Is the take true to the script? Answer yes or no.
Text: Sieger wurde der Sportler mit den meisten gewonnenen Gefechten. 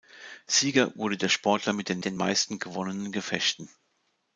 no